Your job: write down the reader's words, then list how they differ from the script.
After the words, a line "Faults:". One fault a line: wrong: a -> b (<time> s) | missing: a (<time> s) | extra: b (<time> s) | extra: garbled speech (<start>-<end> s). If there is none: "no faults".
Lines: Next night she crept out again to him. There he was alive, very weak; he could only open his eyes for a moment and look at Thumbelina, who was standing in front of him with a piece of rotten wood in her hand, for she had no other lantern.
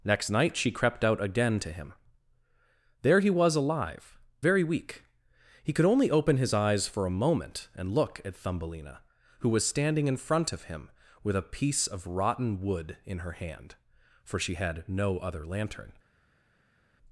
Next night she crept out again to him. There he was alive, very weak; he could only open his eyes for a moment and look at Thumbelina, who was standing in front of him with a piece of rotten wood in her hand, for she had no other lantern.
Faults:
no faults